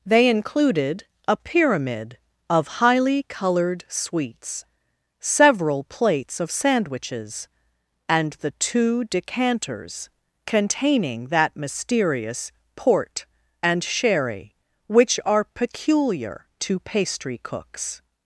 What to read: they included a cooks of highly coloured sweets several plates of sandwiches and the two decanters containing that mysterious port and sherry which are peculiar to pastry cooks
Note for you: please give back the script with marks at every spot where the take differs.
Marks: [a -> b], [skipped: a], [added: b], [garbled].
they included a [cooks -> pyramid] of highly coloured sweets several plates of sandwiches and the two decanters containing that mysterious port and sherry which are peculiar to pastry cooks